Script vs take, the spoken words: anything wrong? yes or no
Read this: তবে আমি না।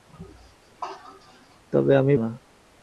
no